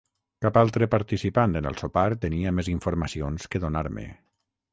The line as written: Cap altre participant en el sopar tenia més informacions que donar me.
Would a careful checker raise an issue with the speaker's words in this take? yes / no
no